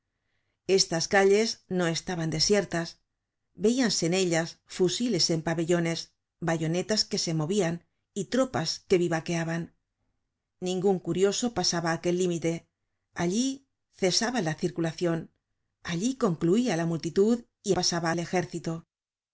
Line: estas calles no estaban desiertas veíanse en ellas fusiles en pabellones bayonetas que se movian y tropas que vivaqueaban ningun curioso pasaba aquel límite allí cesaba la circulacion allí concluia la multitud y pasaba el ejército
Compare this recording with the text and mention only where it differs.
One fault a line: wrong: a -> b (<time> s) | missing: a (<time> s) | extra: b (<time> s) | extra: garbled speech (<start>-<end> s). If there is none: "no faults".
no faults